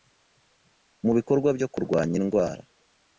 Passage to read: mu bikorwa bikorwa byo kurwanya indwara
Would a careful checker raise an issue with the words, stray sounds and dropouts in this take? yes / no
yes